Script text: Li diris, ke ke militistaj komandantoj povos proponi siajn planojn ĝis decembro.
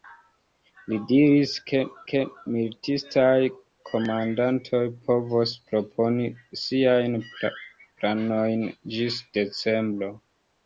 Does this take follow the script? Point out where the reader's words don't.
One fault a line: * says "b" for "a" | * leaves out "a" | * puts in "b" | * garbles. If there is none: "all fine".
all fine